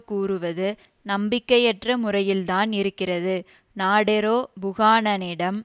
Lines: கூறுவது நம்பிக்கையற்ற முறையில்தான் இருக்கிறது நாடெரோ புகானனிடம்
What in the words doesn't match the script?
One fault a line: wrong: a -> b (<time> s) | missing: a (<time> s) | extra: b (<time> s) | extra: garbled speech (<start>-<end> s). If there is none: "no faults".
no faults